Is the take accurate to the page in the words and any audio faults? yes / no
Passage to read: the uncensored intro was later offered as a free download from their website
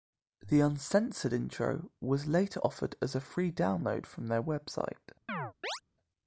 no